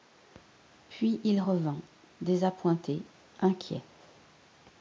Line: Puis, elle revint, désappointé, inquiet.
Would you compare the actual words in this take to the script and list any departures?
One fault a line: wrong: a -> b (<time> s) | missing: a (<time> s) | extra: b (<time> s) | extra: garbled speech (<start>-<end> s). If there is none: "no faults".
wrong: elle -> il (1.2 s)